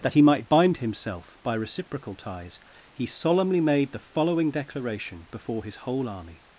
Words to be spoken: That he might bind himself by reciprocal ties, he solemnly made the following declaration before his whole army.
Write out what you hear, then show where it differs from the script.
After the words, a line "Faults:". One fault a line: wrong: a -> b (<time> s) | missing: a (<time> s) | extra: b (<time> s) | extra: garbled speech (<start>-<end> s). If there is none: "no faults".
That he might bind himself by reciprocal ties, he solemnly made the following declaration before his whole army.
Faults:
no faults